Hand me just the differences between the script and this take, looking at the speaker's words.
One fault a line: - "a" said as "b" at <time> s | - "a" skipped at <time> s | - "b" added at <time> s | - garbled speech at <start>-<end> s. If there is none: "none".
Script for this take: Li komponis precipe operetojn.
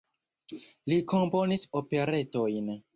- "precipe" skipped at 1.6 s